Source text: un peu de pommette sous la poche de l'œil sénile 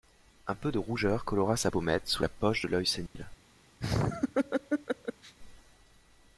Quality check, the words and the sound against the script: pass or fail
fail